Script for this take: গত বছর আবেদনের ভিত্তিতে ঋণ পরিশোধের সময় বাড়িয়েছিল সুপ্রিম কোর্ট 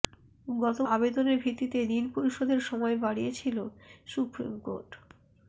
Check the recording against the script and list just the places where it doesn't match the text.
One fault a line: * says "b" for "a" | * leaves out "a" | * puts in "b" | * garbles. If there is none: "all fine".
* leaves out "বছর"